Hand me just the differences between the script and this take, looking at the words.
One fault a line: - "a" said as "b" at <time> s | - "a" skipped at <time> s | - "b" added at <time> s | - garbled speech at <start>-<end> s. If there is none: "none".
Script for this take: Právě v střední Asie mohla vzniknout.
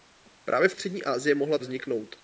none